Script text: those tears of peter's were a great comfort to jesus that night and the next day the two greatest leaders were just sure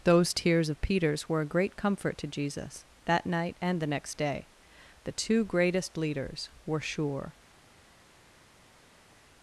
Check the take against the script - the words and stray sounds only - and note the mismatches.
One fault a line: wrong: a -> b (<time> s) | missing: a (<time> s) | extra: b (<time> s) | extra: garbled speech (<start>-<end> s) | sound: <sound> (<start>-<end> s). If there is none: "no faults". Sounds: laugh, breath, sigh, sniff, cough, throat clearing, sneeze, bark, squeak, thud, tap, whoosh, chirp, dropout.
missing: just (6.8 s)